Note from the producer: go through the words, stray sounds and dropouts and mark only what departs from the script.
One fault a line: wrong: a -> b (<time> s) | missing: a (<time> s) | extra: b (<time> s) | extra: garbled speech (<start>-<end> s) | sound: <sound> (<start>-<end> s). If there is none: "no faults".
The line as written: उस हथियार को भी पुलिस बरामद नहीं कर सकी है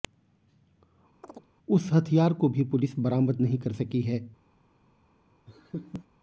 sound: chirp (1.2-1.5 s)
sound: laugh (5.5-6.1 s)